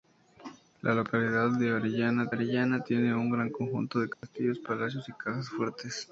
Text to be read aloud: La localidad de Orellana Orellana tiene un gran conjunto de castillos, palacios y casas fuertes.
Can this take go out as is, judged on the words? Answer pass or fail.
pass